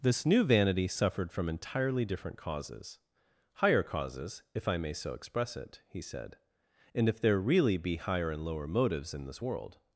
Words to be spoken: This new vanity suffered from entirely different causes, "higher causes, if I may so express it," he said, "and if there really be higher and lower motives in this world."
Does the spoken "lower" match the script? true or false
true